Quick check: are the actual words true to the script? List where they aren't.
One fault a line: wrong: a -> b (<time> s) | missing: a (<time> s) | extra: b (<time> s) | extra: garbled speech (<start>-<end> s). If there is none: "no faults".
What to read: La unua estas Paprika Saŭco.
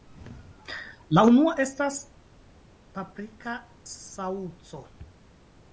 no faults